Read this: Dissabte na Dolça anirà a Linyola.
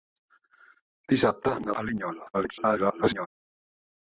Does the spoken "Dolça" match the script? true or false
false